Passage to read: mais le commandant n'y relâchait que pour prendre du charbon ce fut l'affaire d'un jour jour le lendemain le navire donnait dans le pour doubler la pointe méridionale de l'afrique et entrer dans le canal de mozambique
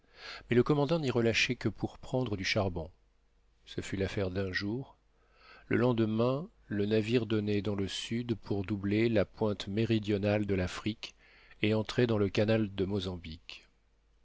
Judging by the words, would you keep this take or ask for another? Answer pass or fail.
fail